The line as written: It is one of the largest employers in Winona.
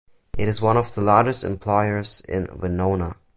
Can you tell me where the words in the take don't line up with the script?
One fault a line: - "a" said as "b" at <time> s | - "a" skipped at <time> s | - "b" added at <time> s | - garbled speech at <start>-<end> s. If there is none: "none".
none